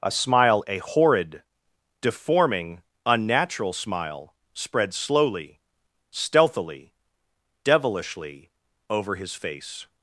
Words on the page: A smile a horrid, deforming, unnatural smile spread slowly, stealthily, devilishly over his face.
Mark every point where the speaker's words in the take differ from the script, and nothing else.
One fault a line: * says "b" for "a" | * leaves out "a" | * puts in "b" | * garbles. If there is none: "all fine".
all fine